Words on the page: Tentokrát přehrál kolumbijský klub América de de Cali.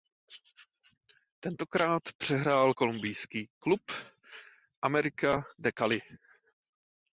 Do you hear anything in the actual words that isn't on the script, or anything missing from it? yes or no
yes